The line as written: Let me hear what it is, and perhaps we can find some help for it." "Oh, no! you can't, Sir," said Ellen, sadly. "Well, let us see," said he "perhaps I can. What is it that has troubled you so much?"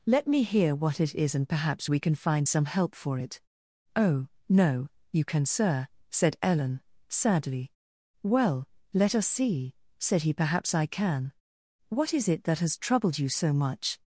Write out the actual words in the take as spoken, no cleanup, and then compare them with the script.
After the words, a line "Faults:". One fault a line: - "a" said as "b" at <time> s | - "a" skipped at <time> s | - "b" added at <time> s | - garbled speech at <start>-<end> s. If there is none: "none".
Let me hear what it is, and perhaps we can find some help for it." "Oh, no! you can, Sir," said Ellen, sadly. "Well, let us see," said he "perhaps I can. What is it that has troubled you so much?"
Faults:
- "can't" said as "can" at 5.2 s